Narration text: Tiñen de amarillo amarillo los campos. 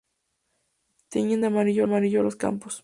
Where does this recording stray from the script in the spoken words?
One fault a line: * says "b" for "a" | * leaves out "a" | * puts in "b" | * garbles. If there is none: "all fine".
all fine